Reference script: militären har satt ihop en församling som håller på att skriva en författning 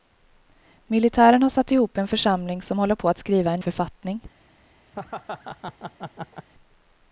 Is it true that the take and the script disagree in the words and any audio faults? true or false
true